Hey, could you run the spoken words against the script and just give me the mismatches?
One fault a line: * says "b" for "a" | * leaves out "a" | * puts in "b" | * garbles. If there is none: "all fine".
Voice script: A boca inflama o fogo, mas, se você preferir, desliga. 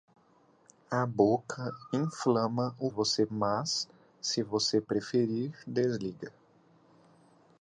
* says "você" for "fogo"